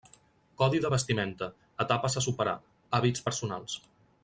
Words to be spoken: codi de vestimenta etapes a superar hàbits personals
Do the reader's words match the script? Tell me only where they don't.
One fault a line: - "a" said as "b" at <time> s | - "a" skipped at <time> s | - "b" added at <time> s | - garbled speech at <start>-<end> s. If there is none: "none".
none